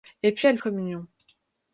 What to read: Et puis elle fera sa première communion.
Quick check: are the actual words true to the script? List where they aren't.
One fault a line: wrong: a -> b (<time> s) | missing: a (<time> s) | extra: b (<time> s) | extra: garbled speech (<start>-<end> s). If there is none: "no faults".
missing: fera sa première (0.6 s)